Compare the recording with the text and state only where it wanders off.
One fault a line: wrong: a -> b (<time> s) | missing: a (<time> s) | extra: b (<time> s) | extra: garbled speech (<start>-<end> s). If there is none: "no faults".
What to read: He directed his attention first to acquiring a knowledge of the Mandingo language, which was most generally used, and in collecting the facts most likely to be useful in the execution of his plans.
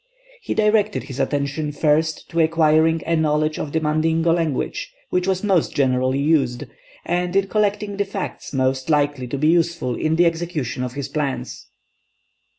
no faults